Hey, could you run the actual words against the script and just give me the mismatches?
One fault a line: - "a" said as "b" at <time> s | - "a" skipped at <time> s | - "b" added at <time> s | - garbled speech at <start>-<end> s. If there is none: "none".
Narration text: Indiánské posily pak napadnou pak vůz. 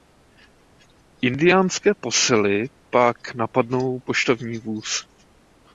- "pak" said as "poštovní" at 4.0 s